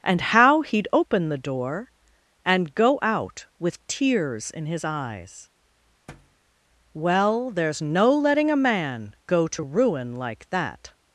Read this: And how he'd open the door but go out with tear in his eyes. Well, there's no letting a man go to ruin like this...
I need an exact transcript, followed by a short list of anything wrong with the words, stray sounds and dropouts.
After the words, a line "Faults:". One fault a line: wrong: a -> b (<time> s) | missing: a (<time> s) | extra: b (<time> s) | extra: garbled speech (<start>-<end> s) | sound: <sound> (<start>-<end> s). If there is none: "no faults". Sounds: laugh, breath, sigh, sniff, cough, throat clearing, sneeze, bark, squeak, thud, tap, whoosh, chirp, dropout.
And how he'd open the door and go out with tears in his eyes. Well, there's no letting a man go to ruin like that...
Faults:
wrong: but -> and (2.4 s)
wrong: tear -> tears (3.9 s)
sound: thud (6.1-6.4 s)
wrong: this -> that (10.5 s)